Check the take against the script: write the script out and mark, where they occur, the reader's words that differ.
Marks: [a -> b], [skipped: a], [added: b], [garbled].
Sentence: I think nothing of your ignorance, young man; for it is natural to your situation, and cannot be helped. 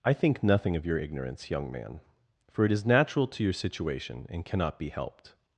I think nothing of your ignorance, young man; for it is natural to your situation, and cannot be helped.